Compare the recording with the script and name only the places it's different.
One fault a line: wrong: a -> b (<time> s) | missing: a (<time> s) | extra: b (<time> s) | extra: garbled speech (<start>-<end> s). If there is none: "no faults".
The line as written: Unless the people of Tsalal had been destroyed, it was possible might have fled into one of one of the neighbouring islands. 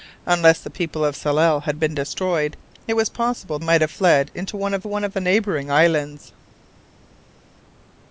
no faults